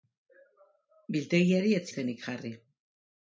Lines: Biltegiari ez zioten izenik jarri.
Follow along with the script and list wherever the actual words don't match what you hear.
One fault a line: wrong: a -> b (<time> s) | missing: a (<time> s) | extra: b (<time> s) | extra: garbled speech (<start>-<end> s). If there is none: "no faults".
missing: zioten (1.9 s)